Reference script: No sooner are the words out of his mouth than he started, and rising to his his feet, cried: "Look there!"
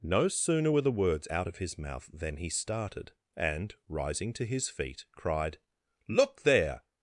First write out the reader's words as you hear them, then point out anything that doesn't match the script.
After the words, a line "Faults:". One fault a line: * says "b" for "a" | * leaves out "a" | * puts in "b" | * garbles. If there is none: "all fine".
No sooner were the words out of his mouth than he started, and rising to his feet, cried: "Look there!"
Faults:
* says "were" for "are"
* leaves out "his"